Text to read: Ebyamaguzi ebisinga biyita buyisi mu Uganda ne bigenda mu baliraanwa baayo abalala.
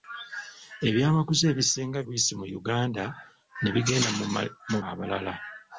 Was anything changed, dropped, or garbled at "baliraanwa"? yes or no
yes